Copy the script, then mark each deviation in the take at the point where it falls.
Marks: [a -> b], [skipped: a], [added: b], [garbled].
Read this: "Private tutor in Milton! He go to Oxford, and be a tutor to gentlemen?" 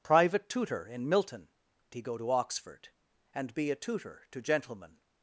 "Private tutor in Milton! He go to Oxford, and be a tutor to gentlemen?"